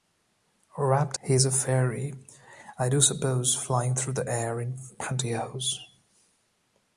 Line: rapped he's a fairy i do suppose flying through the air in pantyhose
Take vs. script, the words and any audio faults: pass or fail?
pass